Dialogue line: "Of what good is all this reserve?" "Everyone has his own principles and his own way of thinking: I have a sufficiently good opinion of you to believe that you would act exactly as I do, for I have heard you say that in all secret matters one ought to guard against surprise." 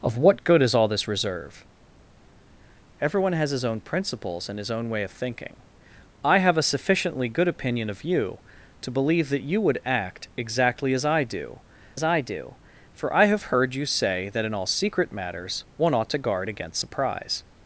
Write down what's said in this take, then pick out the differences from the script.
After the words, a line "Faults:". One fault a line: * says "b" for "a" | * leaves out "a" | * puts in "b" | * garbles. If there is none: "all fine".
"Of what good is all this reserve?" "Everyone has his own principles and his own way of thinking: I have a sufficiently good opinion of you to believe that you would act exactly as I do as I do, for I have heard you say that in all secret matters one ought to guard against surprise."
Faults:
* puts in "as I do"